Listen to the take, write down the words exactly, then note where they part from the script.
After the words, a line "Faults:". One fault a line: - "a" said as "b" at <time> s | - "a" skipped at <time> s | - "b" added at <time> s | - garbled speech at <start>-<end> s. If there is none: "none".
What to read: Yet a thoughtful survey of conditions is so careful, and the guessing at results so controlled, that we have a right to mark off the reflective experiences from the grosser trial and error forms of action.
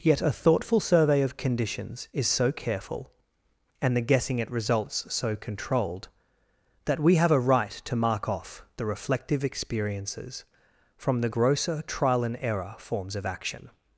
Yet a thoughtful survey of conditions is so careful, and the guessing at results so controlled, that we have a right to mark off the reflective experiences from the grosser trial and error forms of action.
Faults:
none